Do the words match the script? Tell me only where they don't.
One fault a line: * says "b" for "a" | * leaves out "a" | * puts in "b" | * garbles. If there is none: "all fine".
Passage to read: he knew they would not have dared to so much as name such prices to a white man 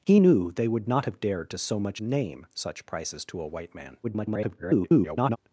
* leaves out "as"
* garbles